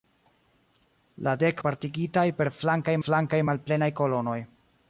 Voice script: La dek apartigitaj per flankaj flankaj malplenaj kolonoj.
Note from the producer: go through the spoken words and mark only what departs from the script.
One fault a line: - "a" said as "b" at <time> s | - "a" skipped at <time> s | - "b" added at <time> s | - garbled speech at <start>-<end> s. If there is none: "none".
none